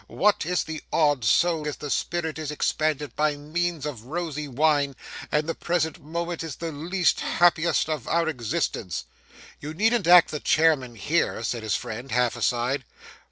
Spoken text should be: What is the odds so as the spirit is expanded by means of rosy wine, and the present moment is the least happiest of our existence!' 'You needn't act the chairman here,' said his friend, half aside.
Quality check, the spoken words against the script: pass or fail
pass